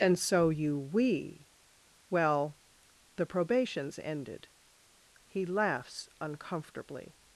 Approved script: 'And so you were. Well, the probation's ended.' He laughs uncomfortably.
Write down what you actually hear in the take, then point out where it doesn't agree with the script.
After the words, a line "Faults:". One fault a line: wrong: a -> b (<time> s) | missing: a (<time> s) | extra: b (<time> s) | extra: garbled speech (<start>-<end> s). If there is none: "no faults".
'And so you we. Well, the probation's ended.' He laughs uncomfortably.
Faults:
wrong: were -> we (0.8 s)